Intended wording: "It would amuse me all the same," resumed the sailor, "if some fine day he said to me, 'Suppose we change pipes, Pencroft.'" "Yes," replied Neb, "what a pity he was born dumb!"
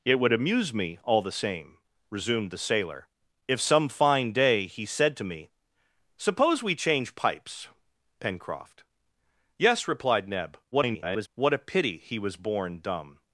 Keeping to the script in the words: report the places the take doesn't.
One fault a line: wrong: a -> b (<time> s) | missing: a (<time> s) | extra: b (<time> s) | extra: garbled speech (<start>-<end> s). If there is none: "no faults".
extra: garbled speech (10.7-11.3 s)